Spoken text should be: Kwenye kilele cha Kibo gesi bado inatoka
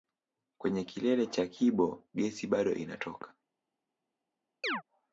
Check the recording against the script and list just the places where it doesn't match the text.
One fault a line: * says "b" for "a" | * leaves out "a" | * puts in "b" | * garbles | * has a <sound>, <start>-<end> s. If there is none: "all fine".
* has a chirp, 4.6-4.8 s